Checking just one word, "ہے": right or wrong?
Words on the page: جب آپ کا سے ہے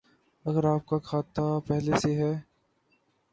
right